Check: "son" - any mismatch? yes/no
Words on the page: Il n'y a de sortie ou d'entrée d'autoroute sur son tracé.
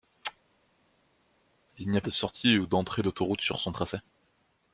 no